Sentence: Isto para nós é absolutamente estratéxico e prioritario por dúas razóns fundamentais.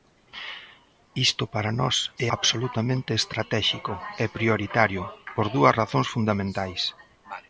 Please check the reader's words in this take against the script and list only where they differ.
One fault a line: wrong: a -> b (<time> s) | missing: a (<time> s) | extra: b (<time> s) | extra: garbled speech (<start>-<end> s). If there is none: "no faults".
no faults